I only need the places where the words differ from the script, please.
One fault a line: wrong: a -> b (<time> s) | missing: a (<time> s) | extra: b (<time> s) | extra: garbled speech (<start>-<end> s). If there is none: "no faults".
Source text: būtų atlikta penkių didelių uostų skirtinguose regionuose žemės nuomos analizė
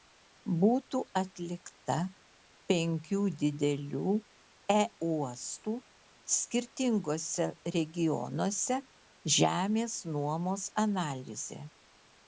no faults